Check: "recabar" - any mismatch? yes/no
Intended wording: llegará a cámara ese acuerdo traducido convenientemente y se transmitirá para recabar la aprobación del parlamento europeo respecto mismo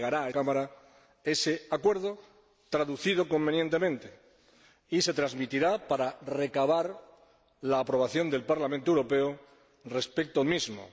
no